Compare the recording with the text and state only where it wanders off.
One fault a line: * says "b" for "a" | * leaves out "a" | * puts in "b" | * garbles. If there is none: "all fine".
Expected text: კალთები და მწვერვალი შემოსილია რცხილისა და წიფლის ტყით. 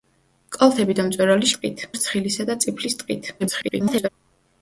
* says "ტყით" for "შემოსილია"
* garbles